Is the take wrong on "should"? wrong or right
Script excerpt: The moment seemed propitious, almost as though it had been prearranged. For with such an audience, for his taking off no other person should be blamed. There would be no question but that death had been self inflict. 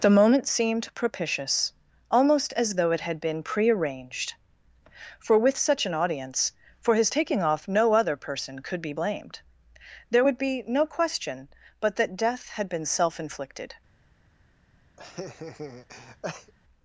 wrong